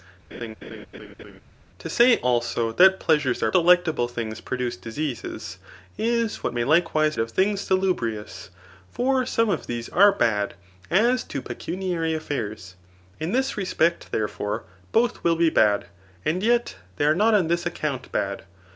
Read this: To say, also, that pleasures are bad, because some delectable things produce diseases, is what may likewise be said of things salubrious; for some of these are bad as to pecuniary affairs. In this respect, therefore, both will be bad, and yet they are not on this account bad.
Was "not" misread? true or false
false